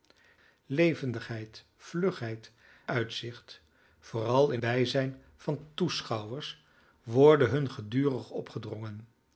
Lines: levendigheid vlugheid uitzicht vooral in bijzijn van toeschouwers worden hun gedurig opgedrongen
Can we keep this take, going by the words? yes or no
yes